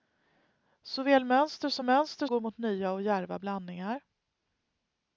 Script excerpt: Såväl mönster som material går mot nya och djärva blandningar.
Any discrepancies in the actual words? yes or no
yes